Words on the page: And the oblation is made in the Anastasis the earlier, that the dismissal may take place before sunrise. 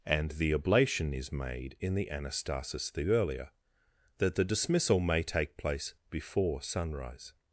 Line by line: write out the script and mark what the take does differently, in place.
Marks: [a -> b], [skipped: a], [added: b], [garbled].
And the oblation is made in the Anastasis the earlier, that the dismissal may take place before sunrise.